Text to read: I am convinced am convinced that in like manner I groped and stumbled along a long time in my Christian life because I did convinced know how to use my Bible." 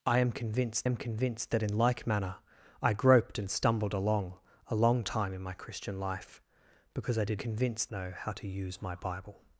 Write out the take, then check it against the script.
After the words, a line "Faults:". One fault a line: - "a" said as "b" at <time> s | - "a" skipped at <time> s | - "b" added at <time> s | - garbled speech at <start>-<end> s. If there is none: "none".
I am convinced am convinced that in like manner I groped and stumbled along a long time in my Christian life because I did convinced know how to use my Bible."
Faults:
none